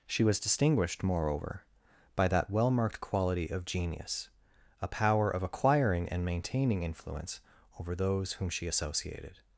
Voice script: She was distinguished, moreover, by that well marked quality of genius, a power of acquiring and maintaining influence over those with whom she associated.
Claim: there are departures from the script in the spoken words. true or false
true